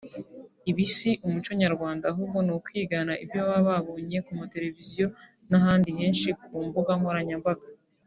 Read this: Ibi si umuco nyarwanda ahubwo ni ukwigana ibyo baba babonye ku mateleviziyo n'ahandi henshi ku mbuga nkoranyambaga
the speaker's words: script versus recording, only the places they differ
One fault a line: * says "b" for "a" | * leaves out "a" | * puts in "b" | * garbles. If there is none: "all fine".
all fine